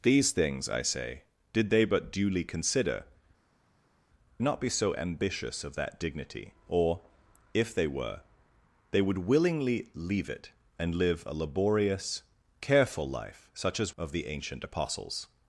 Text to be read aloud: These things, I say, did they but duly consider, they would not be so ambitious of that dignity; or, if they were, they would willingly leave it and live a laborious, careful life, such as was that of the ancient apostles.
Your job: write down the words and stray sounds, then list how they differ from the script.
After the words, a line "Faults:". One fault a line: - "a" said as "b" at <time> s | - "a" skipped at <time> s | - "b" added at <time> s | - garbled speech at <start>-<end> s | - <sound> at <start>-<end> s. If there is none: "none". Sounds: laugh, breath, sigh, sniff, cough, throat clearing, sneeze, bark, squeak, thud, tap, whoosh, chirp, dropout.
These things, I say, did they but duly consider, not be so ambitious of that dignity; or, if they were, they would willingly leave it and live a laborious, careful life, such as of the ancient apostles.
Faults:
- "they would" skipped at 3.0 s
- "was that" skipped at 13.9 s